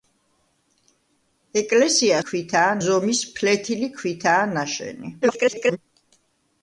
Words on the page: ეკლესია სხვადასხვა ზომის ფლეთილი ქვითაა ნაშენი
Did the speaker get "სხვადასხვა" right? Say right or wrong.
wrong